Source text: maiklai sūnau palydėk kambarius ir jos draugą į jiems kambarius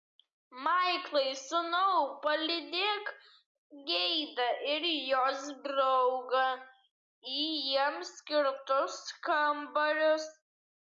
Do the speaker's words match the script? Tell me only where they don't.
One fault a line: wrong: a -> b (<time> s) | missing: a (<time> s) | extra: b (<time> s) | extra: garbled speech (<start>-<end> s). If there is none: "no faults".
wrong: kambarius -> geidą (3.9 s)
extra: skirtus (8.2 s)